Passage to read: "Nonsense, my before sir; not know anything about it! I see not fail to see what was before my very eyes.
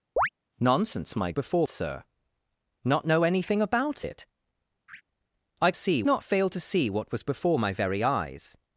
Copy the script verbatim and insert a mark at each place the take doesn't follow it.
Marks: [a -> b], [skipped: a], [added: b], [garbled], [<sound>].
[chirp] "Nonsense, my before sir; not know anything about it! [laugh] I see not fail to see what was before my very eyes.